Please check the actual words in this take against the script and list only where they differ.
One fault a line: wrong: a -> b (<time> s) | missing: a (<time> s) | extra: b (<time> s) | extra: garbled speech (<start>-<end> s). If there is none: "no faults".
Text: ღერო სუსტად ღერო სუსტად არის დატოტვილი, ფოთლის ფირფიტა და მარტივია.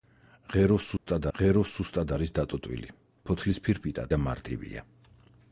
no faults